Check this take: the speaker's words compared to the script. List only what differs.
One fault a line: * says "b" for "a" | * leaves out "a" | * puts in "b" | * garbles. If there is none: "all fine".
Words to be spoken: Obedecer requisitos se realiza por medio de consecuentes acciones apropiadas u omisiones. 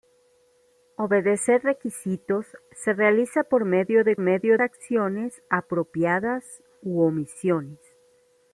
* says "medio" for "consecuentes"